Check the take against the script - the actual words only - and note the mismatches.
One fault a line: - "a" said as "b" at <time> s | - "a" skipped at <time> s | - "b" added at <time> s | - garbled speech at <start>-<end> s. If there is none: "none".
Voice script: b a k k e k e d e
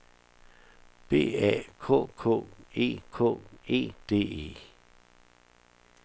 none